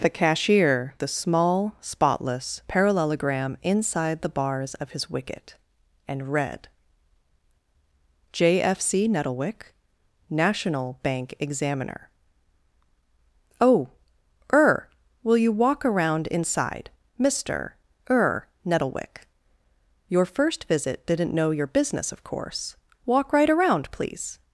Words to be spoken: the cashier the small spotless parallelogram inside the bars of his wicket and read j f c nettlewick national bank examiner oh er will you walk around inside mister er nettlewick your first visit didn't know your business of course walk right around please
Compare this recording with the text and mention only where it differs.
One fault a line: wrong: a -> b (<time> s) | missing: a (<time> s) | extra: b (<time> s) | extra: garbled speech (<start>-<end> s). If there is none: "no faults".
no faults